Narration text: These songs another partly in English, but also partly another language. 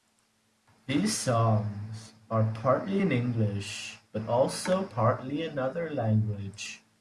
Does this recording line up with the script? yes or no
no